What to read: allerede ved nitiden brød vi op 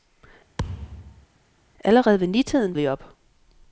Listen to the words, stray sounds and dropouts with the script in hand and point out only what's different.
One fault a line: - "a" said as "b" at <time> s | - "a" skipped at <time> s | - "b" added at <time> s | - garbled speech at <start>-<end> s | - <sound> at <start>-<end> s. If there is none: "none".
- thud at 0.6-1.3 s
- "brød" skipped at 2.7 s